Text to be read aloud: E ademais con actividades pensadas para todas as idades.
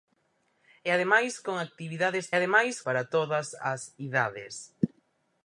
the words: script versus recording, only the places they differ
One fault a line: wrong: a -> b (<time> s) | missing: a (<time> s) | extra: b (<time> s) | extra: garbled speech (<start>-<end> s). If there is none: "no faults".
wrong: pensadas -> ademais (2.4 s)